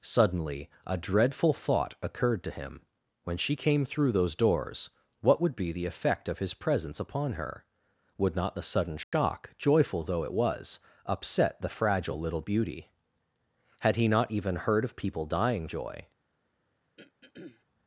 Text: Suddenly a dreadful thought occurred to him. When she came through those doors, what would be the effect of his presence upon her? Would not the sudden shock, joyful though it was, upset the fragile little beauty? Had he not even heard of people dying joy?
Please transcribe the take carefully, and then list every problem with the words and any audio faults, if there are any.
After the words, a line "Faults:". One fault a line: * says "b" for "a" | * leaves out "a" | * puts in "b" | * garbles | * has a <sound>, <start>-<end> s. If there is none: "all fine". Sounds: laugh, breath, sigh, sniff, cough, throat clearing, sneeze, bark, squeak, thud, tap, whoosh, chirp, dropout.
Suddenly a dreadful thought occurred to him. When she came through those doors, what would be the effect of his presence upon her? Would not the sudden shock, joyful though it was, upset the fragile little beauty? Had he not even heard of people dying joy?
Faults:
* has a dropout, 9.0-9.1 s
* has a throat clearing, 17.0-17.6 s